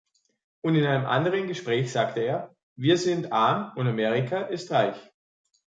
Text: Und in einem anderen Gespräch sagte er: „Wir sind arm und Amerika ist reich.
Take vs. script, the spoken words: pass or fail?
pass